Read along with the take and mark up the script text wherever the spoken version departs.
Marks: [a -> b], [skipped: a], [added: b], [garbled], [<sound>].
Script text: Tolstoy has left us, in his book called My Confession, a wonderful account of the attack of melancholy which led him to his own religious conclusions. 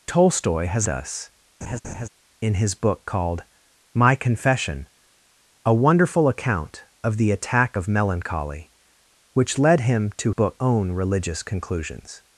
Tolstoy has [skipped: left] us, [laugh] in his book called My Confession, a wonderful account of the attack of melancholy which led him to [his -> book] own religious conclusions.